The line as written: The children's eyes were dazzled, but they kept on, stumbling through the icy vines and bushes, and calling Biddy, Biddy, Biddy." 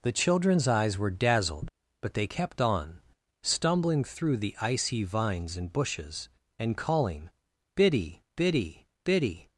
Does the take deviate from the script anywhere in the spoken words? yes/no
no